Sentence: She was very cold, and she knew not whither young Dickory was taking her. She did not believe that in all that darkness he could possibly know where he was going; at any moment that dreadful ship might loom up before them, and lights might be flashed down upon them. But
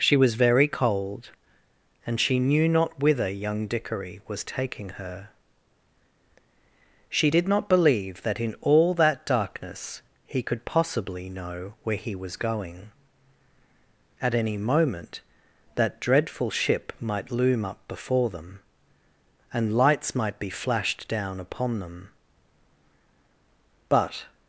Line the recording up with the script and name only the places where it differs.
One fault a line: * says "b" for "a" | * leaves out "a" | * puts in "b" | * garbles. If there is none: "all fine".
all fine